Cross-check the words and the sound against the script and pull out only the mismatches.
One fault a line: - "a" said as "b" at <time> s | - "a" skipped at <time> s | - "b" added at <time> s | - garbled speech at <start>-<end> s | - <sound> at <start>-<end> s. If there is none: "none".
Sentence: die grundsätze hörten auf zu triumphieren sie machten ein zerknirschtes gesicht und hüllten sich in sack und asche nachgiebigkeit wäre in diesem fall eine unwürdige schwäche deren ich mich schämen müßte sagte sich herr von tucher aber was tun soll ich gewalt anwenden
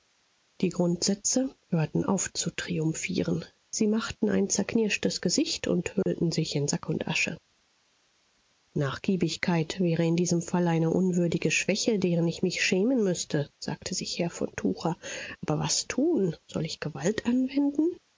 - dropout at 6.0-6.1 s